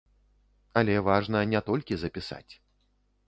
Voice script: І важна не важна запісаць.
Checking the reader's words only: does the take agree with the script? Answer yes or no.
no